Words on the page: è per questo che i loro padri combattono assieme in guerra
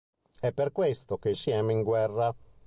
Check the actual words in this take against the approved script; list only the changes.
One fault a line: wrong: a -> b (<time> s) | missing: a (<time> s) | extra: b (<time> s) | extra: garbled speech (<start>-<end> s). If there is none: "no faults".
missing: loro padri combattono (1.4 s)